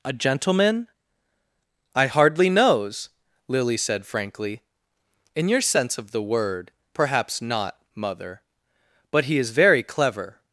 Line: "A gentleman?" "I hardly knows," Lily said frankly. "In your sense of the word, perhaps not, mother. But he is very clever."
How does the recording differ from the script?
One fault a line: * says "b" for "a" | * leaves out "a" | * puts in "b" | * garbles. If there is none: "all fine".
all fine